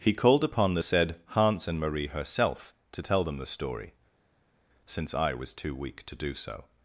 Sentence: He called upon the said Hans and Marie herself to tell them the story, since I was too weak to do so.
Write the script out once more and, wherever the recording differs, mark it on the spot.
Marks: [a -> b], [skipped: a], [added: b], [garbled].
He called upon the said Hans and Marie herself to tell them the story, since I was too weak to do so.